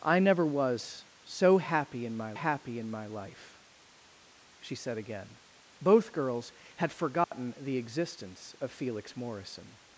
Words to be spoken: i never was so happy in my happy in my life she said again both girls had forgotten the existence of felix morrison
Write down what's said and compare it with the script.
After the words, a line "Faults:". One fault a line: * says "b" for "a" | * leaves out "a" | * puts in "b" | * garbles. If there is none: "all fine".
i never was so happy in my happy in my life she said again both girls had forgotten the existence of felix morrison
Faults:
all fine